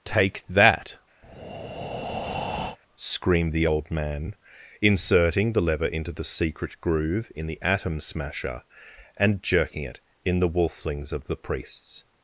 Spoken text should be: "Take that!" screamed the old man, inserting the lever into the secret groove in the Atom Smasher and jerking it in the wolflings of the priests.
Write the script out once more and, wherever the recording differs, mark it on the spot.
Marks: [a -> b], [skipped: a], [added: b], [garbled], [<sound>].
"Take that!" [breath] screamed the old man, inserting the lever into the secret groove in the Atom Smasher and jerking it in the wolflings of the priests.